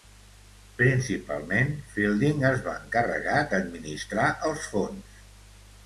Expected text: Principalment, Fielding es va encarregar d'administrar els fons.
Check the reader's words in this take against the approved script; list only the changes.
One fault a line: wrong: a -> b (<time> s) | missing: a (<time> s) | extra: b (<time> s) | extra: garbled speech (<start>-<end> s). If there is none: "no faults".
no faults